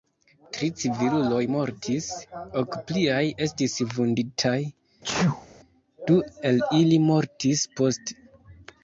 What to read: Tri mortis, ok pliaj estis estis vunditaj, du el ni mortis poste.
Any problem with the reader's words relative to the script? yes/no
yes